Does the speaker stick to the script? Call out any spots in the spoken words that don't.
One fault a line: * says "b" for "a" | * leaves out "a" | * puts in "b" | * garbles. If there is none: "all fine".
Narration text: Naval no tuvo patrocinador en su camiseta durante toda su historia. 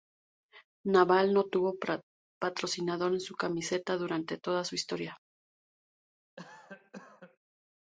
all fine